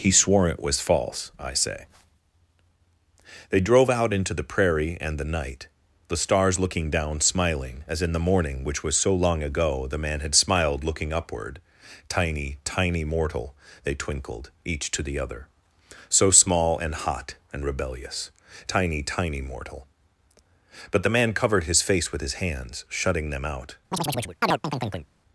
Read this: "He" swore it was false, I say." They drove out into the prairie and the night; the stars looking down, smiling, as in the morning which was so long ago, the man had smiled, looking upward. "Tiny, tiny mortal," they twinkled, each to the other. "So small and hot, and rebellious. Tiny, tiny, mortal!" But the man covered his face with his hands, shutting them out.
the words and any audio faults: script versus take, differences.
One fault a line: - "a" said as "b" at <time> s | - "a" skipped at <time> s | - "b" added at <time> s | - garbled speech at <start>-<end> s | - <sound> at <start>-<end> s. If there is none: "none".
- chirp at 23.9-25.1 s